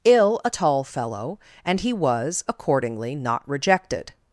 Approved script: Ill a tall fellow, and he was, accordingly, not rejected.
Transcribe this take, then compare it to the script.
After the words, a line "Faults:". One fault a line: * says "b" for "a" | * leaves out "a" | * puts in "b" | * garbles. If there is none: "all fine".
Ill a tall fellow, and he was, accordingly, not rejected.
Faults:
all fine